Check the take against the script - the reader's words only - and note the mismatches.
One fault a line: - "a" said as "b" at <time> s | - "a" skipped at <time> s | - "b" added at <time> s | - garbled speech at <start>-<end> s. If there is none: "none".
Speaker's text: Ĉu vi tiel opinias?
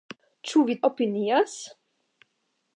- "tiel" skipped at 0.8 s